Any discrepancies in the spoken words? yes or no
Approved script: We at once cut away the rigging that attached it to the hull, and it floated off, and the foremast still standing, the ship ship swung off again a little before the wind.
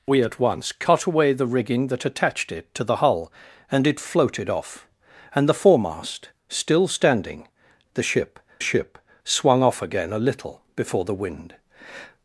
no